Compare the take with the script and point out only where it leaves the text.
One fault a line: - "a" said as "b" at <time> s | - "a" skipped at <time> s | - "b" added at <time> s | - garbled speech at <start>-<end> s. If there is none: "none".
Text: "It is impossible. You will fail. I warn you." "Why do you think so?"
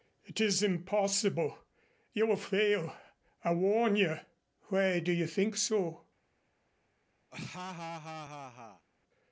none